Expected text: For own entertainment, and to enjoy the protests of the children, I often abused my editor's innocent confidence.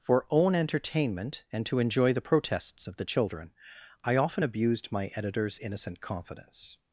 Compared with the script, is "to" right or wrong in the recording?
right